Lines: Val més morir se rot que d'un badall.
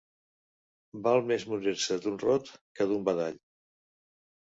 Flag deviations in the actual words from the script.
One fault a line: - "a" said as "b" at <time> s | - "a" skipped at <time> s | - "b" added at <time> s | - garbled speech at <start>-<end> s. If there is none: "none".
- "d'un" added at 2.0 s